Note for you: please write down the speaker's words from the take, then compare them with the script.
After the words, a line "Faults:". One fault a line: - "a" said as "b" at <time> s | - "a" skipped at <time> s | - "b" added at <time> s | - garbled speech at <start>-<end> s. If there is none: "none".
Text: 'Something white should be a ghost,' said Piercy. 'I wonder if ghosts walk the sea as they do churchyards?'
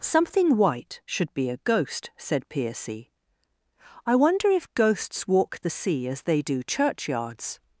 'Something white should be a ghost,' said Piercy. 'I wonder if ghosts walk the sea as they do churchyards?'
Faults:
none